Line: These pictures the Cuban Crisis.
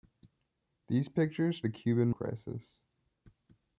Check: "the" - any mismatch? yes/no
no